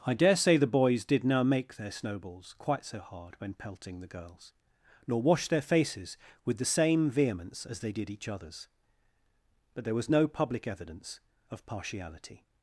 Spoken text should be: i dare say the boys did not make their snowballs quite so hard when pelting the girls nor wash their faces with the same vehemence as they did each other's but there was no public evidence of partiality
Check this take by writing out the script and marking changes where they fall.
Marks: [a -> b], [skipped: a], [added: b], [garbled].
i dare say the boys did [not -> now] make their snowballs quite so hard when pelting the girls nor wash their faces with the same vehemence as they did each other's but there was no public evidence of partiality